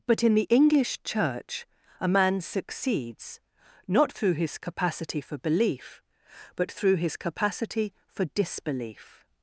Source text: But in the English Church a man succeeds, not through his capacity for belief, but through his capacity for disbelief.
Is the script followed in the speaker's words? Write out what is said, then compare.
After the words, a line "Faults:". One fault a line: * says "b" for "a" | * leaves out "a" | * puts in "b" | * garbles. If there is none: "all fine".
But in the English Church a man succeeds, not through his capacity for belief, but through his capacity for disbelief.
Faults:
all fine